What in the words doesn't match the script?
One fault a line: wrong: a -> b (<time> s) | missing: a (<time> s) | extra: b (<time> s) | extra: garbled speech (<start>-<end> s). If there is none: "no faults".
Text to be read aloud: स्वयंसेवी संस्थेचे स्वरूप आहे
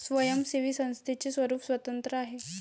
extra: स्वतंत्र (1.6 s)